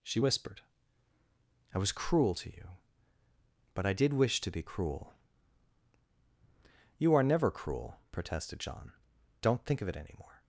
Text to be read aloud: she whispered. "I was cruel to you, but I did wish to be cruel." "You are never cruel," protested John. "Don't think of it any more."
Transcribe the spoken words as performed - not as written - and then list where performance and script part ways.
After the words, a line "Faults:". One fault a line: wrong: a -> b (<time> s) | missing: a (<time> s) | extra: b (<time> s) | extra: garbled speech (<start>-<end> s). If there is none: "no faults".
she whispered. "I was cruel to you, but I did wish to be cruel." "You are never cruel," protested John. "Don't think of it any more."
Faults:
no faults